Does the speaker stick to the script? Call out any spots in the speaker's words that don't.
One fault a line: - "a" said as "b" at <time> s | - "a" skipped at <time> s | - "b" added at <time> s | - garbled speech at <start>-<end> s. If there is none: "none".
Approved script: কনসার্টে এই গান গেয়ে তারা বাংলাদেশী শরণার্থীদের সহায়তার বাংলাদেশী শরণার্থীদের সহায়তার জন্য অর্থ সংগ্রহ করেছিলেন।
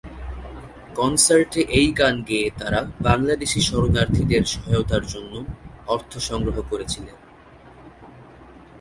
- "বাংলাদেশী শরণার্থীদের সহায়তার" skipped at 5.0 s